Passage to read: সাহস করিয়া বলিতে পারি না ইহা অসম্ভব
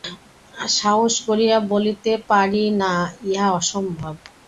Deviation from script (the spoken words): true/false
false